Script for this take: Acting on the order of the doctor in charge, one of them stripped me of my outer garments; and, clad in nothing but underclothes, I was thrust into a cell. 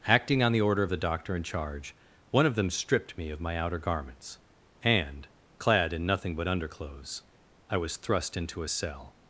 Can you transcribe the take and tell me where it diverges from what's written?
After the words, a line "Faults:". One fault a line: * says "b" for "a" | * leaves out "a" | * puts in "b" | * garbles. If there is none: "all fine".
Acting on the order of the doctor in charge, one of them stripped me of my outer garments; and, clad in nothing but underclothes, I was thrust into a cell.
Faults:
all fine